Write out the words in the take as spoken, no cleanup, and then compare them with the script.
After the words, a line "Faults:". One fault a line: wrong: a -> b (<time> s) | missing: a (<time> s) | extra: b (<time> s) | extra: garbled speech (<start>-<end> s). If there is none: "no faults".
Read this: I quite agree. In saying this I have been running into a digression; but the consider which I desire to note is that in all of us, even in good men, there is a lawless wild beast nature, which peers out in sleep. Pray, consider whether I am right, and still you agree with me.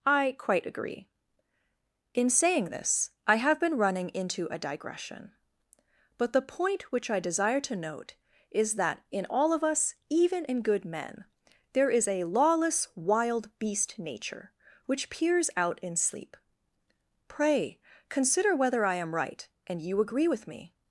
I quite agree. In saying this I have been running into a digression; but the point which I desire to note is that in all of us, even in good men, there is a lawless wild beast nature, which peers out in sleep. Pray, consider whether I am right, and you agree with me.
Faults:
wrong: consider -> point (6.4 s)
missing: still (19.8 s)